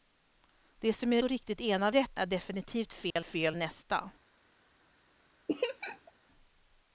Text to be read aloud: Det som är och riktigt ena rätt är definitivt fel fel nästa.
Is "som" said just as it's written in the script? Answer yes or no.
yes